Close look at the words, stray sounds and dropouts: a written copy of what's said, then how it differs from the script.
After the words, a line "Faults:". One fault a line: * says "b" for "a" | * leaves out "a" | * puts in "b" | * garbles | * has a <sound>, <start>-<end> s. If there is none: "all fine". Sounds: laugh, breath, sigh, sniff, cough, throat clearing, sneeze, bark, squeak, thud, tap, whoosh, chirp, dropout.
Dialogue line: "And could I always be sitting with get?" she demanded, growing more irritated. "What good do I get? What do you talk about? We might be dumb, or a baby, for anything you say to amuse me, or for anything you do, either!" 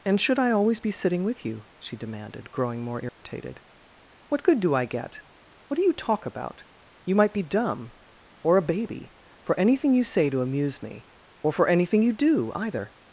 "And should I always be sitting with you?" she demanded, growing more irritated. "What good do I get? What do you talk about? You might be dumb, or a baby, for anything you say to amuse me, or for anything you do, either!"
Faults:
* says "should" for "could"
* says "you" for "get"
* has a dropout, 3.1-3.2 s
* says "You" for "We"